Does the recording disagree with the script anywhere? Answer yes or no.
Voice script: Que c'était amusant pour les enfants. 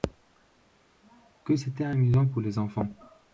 no